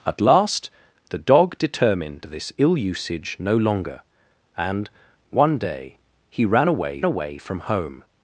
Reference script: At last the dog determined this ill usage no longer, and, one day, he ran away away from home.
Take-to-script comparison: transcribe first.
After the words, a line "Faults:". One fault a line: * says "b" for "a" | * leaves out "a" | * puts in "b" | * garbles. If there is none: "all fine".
At last the dog determined this ill usage no longer, and, one day, he ran away away from home.
Faults:
all fine